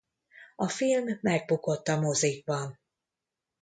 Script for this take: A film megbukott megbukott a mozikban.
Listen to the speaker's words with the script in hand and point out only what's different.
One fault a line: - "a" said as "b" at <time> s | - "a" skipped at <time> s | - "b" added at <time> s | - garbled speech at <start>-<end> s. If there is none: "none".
- "megbukott" skipped at 1.9 s